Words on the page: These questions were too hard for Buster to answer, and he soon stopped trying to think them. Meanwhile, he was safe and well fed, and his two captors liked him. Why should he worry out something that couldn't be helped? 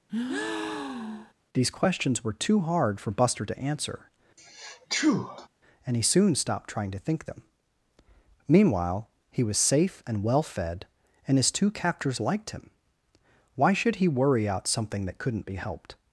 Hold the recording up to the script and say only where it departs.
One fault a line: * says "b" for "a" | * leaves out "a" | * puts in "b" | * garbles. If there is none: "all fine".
all fine